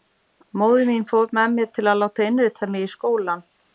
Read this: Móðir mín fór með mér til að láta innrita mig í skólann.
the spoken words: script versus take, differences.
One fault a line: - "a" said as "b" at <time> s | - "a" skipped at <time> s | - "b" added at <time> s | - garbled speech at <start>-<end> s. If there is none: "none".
none